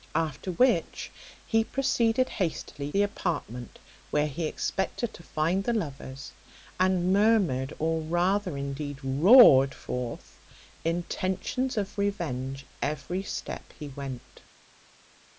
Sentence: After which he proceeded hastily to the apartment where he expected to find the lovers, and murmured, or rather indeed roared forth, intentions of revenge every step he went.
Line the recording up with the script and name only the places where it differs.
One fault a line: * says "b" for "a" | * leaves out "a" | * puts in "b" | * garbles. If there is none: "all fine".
* leaves out "to"